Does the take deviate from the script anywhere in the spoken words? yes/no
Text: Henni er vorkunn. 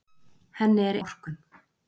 no